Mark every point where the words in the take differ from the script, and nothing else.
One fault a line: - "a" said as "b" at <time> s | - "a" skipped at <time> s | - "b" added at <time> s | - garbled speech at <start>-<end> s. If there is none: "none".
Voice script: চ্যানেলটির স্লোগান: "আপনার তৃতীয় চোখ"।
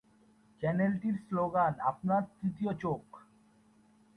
none